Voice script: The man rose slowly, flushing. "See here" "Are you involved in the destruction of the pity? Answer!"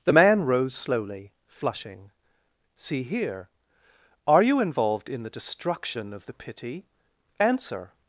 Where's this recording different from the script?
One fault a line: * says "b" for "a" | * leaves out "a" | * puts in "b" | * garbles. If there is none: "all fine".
all fine